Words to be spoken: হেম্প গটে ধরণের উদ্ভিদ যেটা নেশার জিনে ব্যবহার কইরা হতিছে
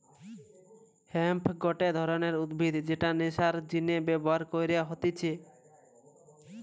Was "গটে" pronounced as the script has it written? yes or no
yes